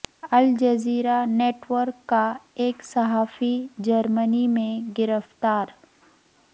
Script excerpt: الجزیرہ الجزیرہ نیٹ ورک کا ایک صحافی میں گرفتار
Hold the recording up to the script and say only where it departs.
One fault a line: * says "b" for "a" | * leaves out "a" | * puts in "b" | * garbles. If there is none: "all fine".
* leaves out "الجزیرہ"
* puts in "جرمنی"